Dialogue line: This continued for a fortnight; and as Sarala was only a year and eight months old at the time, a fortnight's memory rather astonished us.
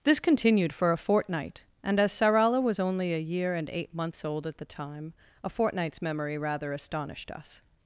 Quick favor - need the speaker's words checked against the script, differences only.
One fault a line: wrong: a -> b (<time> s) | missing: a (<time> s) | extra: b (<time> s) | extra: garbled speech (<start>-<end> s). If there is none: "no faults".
no faults